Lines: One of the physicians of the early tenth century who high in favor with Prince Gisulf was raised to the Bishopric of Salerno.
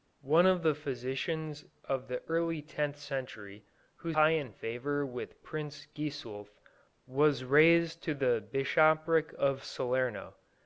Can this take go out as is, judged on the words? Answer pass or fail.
pass